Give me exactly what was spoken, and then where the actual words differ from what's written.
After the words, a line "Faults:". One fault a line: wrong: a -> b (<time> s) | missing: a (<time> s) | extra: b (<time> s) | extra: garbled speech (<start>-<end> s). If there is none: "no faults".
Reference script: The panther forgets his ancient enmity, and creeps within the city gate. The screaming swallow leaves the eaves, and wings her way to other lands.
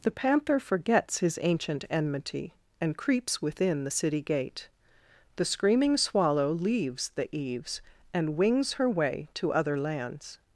The panther forgets his ancient enmity, and creeps within the city gate. The screaming swallow leaves the eaves, and wings her way to other lands.
Faults:
no faults